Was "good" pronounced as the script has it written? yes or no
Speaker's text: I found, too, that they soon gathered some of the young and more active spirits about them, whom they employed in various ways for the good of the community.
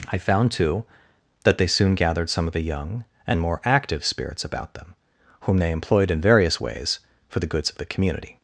no